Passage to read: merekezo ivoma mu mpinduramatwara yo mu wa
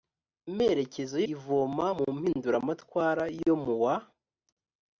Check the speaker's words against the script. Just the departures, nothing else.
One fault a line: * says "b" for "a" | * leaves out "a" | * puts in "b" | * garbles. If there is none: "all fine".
all fine